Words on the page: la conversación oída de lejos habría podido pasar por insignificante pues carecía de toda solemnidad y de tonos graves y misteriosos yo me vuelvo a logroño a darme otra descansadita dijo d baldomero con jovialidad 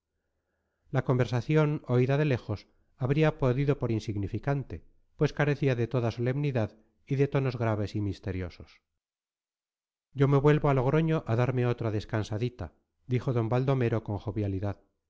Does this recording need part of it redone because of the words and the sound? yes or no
yes